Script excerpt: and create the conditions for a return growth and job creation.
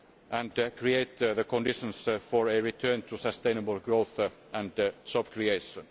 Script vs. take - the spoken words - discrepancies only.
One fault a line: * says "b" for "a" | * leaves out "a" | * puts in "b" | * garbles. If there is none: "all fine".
* puts in "to sustainable"